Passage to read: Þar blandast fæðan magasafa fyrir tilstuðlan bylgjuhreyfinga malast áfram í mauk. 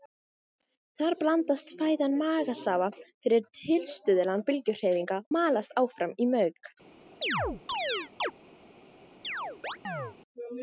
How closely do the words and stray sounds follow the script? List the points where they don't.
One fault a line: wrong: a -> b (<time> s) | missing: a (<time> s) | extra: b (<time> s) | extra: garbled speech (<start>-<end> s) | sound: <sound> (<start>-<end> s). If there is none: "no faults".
sound: chirp (7.2-8.3 s)
sound: chirp (9.2-10.2 s)